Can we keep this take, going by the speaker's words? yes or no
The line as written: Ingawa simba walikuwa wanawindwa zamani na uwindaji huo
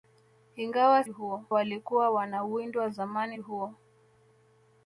no